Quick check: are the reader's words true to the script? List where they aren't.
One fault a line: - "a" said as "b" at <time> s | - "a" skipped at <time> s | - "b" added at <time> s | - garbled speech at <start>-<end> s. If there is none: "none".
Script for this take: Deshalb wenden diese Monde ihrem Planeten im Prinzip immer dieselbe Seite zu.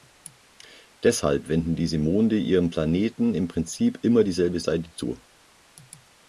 none